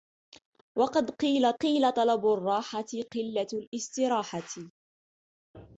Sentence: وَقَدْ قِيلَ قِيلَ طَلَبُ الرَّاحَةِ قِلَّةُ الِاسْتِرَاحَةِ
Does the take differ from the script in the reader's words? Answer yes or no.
no